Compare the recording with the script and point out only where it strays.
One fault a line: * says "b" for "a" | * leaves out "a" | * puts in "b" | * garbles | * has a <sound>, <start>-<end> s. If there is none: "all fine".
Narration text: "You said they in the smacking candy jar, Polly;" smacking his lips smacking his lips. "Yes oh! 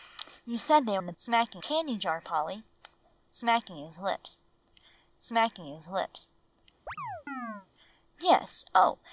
* has a chirp, 6.9-7.7 s